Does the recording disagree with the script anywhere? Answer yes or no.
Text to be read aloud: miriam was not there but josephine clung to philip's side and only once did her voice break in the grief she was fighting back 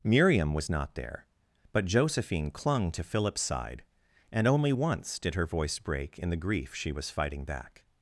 no